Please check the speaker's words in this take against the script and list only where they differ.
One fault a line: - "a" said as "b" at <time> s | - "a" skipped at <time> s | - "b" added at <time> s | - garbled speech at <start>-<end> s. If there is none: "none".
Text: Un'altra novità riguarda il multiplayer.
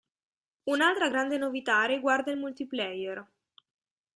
- "grande" added at 1.1 s